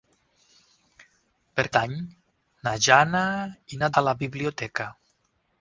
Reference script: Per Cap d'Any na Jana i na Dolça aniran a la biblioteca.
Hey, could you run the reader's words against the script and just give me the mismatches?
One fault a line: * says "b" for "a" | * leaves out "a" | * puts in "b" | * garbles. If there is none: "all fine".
* leaves out "Cap"
* leaves out "Dolça aniran"